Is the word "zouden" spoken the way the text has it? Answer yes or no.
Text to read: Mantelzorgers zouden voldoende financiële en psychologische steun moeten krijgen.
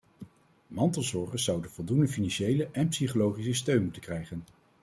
yes